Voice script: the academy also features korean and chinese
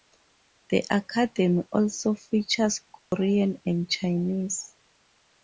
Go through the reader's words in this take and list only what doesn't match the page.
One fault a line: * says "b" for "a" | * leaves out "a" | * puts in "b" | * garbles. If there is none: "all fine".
all fine